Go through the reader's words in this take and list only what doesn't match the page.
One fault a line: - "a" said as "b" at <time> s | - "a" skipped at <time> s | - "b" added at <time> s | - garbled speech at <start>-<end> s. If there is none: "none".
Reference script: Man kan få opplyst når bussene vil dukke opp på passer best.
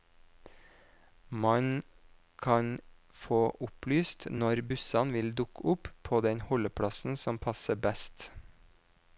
- "den holdeplassen som" added at 6.3 s